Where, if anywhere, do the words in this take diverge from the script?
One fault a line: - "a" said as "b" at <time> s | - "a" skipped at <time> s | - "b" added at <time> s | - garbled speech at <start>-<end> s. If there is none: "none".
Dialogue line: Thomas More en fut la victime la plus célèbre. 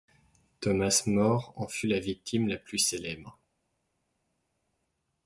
none